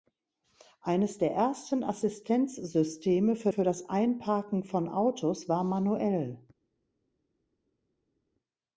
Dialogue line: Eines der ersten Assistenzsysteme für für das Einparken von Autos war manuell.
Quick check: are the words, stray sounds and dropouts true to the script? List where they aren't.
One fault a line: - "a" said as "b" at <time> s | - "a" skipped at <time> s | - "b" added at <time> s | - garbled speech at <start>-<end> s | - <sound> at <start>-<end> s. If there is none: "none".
none